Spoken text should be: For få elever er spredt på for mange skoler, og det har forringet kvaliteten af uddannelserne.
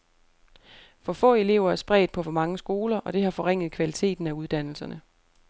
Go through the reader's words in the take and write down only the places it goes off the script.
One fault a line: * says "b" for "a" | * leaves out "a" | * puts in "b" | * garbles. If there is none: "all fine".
all fine